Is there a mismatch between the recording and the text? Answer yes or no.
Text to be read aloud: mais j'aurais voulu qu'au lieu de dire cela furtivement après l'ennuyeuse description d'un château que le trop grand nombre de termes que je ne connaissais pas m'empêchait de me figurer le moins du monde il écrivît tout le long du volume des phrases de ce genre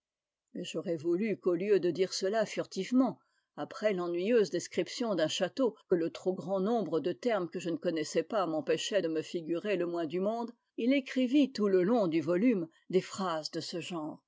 no